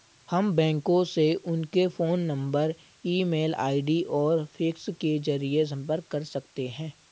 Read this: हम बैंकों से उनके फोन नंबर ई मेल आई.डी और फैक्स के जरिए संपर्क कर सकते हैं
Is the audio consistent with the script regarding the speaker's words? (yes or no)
yes